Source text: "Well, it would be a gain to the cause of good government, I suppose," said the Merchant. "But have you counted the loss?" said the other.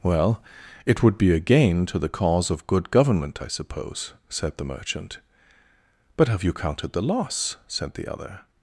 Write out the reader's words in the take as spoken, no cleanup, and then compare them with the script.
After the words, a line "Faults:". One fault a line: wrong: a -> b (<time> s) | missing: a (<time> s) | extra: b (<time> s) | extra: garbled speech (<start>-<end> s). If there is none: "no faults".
"Well, it would be a gain to the cause of good government, I suppose," said the Merchant. "But have you counted the loss?" said the other.
Faults:
no faults